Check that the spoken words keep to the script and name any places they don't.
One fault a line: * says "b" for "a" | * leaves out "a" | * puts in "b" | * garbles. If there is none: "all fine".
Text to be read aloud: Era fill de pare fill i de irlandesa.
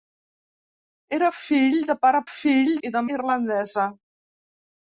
all fine